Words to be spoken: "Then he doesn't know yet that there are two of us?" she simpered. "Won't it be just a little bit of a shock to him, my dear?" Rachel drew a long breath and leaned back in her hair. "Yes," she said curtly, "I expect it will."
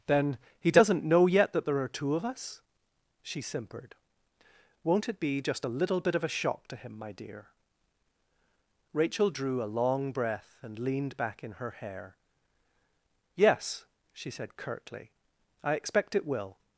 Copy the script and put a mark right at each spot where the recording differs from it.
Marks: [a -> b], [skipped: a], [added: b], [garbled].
"Then he doesn't know yet that there are two of us?" she simpered. "Won't it be just a little bit of a shock to him, my dear?" Rachel drew a long breath and leaned back in her hair. "Yes," she said curtly, "I expect it will."